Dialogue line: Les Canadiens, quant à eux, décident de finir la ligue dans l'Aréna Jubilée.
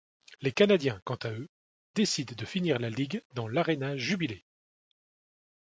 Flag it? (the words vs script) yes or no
no